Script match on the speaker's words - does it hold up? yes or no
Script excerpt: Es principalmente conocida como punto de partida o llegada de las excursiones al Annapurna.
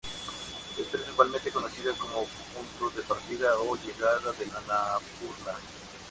no